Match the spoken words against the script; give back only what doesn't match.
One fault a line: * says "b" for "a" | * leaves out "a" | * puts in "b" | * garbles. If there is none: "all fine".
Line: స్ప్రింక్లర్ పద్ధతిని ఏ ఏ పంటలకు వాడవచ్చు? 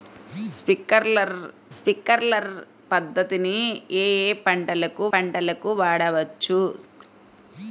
* puts in "స్ప్రింక్లర్"
* puts in "పంటలకు"